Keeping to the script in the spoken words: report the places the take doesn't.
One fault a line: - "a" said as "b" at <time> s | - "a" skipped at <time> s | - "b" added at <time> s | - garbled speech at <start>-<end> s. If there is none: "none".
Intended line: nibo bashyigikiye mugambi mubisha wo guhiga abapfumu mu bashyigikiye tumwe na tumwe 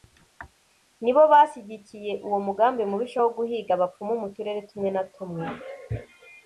- "uwo" added at 2.3 s
- "bashyigikiye" said as "turere" at 4.4 s